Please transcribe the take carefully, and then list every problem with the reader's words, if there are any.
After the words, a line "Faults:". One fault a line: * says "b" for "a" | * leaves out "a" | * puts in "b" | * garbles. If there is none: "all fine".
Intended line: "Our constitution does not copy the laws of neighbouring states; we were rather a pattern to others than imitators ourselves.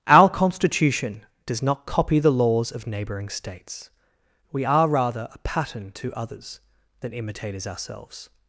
"Our constitution does not copy the laws of neighbouring states; we are rather a pattern to others than imitators ourselves.
Faults:
* says "are" for "were"